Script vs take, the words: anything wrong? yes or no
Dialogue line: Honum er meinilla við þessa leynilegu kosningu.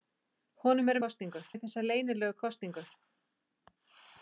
yes